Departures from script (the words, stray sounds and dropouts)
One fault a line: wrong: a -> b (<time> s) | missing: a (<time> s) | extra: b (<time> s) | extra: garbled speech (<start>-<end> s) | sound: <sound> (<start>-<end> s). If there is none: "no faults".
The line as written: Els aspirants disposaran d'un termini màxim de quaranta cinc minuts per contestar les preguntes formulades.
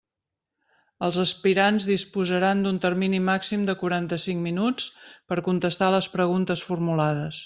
no faults